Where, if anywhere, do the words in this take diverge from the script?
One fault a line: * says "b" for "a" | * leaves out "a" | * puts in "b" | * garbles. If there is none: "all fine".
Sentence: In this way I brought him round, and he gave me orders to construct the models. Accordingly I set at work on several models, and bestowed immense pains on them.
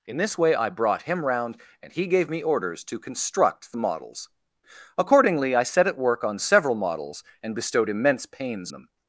* leaves out "on"